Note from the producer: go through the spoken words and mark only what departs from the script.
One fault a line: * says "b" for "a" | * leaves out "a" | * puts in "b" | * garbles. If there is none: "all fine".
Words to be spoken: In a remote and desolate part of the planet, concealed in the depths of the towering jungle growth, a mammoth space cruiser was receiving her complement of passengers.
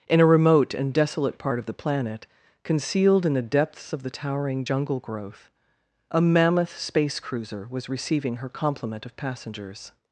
all fine